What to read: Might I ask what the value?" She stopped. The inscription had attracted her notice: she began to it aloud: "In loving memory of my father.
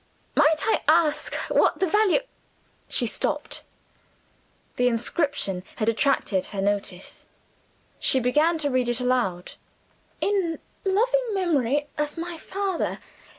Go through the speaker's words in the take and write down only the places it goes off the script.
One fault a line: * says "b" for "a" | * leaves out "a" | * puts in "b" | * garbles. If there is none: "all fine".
* puts in "read"